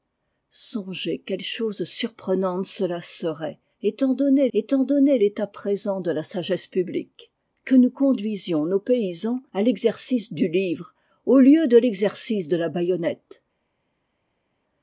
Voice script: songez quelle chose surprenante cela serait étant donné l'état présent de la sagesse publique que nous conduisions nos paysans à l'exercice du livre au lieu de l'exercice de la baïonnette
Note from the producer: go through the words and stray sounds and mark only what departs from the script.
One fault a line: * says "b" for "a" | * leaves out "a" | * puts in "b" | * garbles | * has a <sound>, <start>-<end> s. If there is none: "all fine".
* puts in "étant donné"